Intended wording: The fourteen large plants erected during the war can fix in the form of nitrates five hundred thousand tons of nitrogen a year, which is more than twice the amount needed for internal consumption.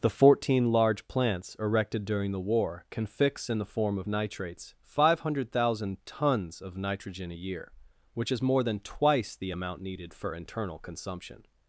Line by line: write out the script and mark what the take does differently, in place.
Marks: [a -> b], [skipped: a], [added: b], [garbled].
The fourteen large plants erected during the war can fix in the form of nitrates five hundred thousand tons of nitrogen a year, which is more than twice the amount needed for internal consumption.